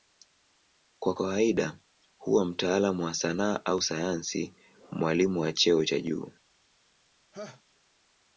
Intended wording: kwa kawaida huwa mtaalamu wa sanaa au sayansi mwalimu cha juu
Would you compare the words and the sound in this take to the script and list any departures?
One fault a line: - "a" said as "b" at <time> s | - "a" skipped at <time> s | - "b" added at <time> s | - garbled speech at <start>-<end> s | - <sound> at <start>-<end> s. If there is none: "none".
- "wa cheo" added at 5.4 s
- laugh at 7.3-7.6 s